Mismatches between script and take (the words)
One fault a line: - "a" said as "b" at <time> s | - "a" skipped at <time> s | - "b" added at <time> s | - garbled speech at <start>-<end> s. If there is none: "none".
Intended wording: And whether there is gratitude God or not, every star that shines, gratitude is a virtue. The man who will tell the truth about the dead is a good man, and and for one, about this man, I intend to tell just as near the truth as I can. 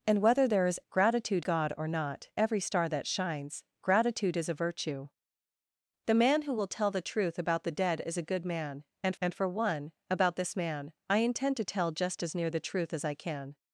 none